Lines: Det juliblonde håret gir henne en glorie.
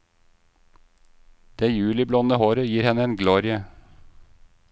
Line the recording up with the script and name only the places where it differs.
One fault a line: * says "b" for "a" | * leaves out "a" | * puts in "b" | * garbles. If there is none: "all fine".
all fine